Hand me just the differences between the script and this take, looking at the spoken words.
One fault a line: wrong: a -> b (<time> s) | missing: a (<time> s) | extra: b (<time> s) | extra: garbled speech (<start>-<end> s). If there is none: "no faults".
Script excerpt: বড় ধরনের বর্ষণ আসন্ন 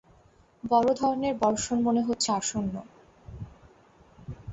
extra: মনে হচ্ছে (1.8 s)